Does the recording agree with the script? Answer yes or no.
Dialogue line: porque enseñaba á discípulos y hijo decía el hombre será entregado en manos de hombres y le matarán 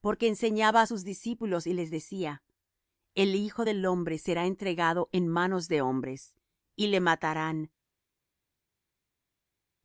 no